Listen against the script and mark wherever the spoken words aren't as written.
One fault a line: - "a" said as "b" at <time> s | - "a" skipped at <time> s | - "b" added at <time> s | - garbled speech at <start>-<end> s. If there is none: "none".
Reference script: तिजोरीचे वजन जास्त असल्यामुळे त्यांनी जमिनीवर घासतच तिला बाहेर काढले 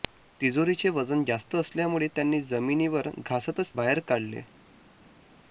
- "तिला" skipped at 3.7 s